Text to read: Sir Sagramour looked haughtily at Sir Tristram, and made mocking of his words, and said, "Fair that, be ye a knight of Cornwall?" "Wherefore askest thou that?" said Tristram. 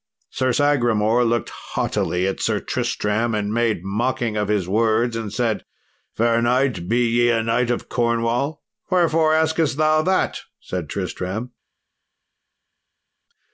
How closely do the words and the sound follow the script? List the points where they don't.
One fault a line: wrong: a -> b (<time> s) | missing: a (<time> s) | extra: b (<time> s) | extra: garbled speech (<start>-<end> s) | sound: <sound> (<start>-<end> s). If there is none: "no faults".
wrong: that -> knight (6.4 s)